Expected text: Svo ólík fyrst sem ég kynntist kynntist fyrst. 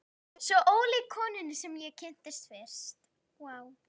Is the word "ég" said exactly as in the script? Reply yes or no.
yes